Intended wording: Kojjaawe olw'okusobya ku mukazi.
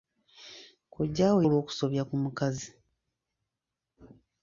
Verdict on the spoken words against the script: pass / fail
pass